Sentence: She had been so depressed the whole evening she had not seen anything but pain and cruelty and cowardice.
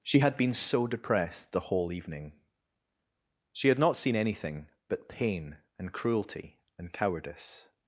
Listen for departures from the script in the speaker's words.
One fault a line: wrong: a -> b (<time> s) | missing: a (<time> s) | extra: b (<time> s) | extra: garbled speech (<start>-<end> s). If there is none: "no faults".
no faults